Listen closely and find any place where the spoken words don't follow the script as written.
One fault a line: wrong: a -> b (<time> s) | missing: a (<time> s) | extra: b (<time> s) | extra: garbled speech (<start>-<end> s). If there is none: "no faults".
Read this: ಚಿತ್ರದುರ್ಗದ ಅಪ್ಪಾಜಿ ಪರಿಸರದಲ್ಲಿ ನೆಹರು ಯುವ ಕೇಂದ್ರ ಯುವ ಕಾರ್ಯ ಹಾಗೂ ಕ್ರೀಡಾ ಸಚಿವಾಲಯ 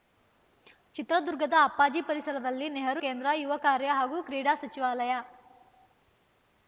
missing: ಯುವ (3.0 s)